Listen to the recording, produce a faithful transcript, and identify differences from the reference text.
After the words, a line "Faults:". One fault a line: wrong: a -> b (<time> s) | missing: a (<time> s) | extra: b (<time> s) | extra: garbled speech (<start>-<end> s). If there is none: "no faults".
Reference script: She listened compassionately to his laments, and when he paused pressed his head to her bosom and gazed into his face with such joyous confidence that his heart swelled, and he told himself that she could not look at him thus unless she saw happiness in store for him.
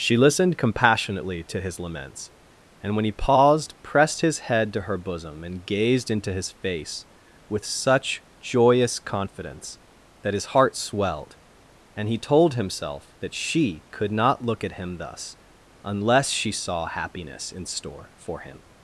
She listened compassionately to his laments, and when he paused pressed his head to her bosom and gazed into his face with such joyous confidence that his heart swelled, and he told himself that she could not look at him thus unless she saw happiness in store for him.
Faults:
no faults